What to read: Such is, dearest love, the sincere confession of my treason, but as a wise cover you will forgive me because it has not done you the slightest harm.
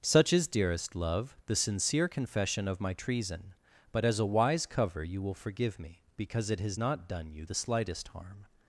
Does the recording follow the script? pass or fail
pass